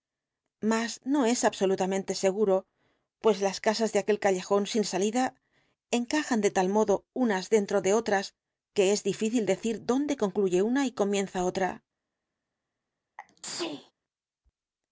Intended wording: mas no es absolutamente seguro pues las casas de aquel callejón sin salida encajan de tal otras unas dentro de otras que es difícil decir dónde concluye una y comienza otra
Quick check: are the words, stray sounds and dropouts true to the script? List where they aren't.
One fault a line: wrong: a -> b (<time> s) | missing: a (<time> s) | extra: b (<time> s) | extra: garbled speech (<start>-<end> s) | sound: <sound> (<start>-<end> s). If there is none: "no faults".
wrong: otras -> modo (6.7 s)
sound: sneeze (13.2-13.9 s)